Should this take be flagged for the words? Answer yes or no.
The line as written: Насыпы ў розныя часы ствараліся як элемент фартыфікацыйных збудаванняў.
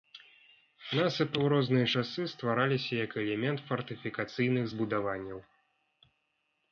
no